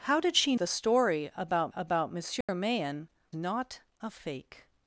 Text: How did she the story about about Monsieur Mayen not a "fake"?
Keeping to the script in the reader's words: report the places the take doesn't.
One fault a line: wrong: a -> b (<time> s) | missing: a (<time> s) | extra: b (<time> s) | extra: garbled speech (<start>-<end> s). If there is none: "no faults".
no faults